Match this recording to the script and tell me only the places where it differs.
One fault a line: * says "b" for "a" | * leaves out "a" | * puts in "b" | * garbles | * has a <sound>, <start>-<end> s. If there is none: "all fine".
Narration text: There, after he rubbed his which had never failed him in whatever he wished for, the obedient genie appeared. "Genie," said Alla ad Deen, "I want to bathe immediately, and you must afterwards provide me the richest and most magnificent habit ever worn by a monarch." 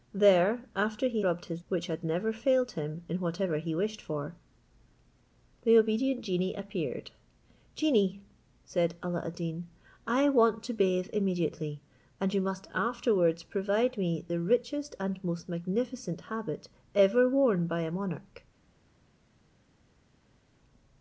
all fine